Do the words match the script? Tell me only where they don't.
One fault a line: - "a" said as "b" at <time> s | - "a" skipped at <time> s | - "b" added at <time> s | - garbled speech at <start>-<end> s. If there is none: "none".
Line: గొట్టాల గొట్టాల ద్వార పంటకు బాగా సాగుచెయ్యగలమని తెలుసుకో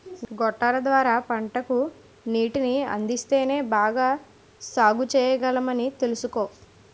- "గొట్టాల" skipped at 0.8 s
- "నీటిని అందిస్తేనే" added at 2.3 s